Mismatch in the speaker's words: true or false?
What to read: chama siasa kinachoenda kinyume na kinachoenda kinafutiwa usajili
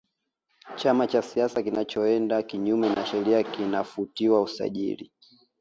true